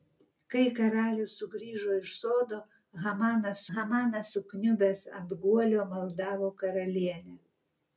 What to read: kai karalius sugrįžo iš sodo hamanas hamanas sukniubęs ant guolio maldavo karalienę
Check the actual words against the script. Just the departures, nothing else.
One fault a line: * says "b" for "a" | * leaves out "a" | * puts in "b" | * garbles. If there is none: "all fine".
all fine